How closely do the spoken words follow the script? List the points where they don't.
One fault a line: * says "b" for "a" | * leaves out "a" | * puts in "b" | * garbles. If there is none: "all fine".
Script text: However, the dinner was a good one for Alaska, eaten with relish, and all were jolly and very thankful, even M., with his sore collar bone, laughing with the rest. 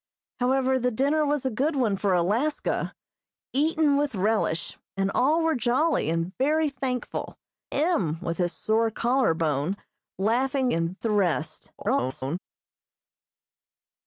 * leaves out "even"
* says "and" for "with"
* garbles